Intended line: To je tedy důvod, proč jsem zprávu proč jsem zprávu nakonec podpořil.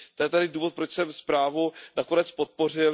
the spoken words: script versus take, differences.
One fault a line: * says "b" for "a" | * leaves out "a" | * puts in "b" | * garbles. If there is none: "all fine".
* leaves out "proč jsem zprávu"